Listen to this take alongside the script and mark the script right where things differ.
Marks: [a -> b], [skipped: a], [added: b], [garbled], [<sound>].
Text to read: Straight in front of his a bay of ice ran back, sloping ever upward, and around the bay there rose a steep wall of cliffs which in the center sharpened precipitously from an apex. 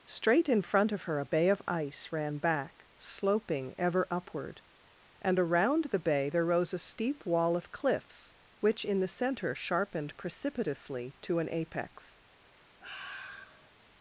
Straight in front of [his -> her] a bay of ice ran back, sloping ever upward, and around the bay there rose a steep wall of cliffs which in the center sharpened precipitously [from -> to] an apex. [sigh]